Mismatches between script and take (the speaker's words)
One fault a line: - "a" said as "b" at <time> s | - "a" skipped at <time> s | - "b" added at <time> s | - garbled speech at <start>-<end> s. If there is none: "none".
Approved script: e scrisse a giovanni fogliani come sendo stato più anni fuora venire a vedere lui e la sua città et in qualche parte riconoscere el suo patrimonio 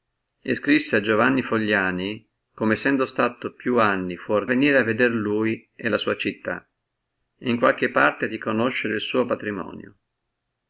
none